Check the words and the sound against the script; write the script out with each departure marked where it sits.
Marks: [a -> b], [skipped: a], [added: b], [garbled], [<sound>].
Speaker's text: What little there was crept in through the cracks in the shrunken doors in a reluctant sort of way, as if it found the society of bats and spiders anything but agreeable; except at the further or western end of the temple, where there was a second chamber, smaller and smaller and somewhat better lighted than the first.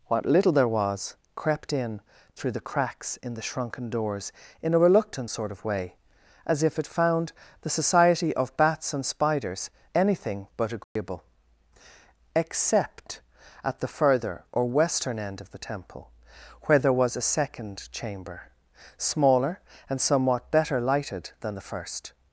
What little there was crept in through the cracks in the shrunken doors in a reluctant sort of way, as if it found the society of bats and spiders anything but agreeable; [dropout] except at the further or western end of the temple, where there was a second chamber, smaller and [skipped: smaller and] somewhat better lighted than the first.